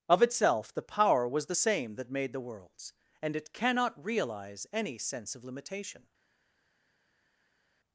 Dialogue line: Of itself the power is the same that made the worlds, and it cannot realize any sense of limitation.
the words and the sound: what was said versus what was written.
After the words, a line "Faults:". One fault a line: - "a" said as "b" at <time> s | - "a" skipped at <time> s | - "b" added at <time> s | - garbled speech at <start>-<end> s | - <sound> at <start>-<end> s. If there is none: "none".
Of itself the power was the same that made the worlds, and it cannot realize any sense of limitation.
Faults:
- "is" said as "was" at 1.3 s